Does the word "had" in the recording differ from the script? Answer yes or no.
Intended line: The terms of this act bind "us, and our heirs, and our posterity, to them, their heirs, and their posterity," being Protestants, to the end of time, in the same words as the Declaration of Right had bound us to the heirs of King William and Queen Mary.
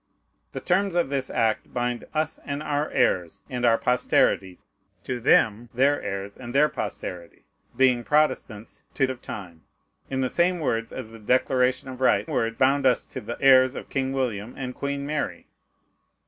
yes